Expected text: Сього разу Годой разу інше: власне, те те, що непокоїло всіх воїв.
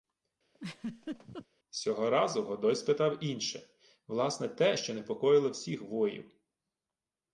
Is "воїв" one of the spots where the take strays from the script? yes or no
no